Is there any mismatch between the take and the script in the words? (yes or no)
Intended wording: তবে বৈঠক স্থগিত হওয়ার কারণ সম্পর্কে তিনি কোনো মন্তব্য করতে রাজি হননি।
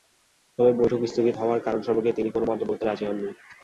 no